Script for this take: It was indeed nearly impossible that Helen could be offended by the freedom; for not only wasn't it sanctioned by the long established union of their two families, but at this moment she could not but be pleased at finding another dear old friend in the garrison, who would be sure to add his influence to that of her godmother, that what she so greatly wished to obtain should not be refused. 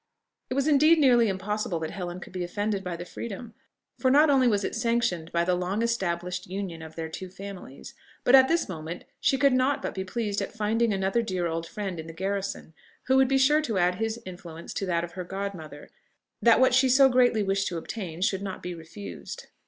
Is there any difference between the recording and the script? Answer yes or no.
yes